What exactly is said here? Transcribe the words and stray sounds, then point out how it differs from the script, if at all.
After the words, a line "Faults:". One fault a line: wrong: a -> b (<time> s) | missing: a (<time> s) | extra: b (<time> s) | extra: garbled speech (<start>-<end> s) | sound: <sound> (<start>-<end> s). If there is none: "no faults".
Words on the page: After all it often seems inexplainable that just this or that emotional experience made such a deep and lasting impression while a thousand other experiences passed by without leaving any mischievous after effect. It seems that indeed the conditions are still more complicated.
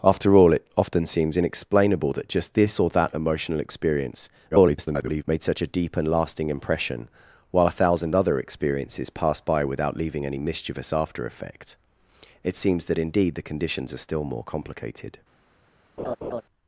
After all it often seems inexplainable that just this or that emotional experience [garbled] made such a deep and lasting impression while a thousand other experiences passed by without leaving any mischievous after effect. It seems that indeed the conditions are still more complicated.
Faults:
extra: garbled speech (4.5-5.2 s)
sound: laugh (16.0-16.4 s)